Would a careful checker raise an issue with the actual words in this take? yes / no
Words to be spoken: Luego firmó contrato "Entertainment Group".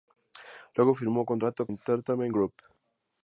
no